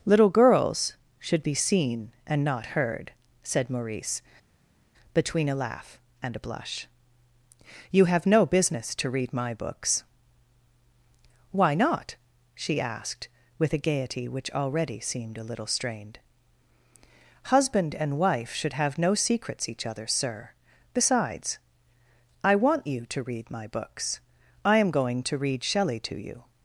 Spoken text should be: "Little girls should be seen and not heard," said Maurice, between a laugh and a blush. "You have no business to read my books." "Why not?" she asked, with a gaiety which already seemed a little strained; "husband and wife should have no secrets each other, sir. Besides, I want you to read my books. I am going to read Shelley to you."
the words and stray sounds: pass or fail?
pass